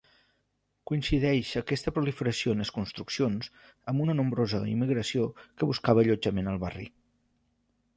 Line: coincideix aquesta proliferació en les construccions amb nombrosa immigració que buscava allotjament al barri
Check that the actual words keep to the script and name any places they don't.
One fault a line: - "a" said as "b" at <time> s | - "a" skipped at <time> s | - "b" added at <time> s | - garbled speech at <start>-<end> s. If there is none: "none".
- "una" added at 4.1 s